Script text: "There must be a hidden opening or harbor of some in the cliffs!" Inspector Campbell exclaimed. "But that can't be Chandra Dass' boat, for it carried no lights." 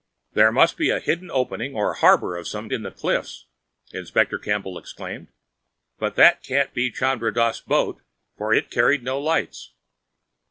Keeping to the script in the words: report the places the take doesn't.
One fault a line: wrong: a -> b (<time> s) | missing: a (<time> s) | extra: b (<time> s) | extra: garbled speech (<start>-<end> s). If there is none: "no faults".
no faults